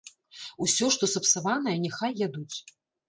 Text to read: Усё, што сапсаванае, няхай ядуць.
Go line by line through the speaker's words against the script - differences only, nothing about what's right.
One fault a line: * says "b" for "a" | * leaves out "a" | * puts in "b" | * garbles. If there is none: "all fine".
all fine